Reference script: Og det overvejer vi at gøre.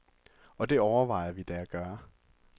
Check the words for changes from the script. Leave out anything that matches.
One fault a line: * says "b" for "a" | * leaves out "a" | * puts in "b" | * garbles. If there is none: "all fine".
* puts in "da"